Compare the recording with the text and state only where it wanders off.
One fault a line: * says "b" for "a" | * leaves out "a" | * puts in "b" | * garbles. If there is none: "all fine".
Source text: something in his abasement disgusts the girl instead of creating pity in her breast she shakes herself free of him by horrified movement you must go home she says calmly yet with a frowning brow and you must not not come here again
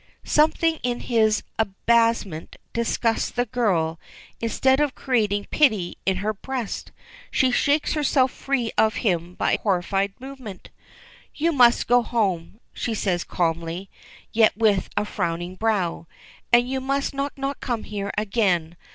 all fine